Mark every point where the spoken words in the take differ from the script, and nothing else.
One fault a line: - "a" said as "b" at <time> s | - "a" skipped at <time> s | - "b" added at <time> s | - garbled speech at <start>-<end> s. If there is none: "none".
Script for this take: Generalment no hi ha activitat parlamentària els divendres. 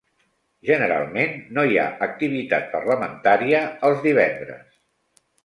none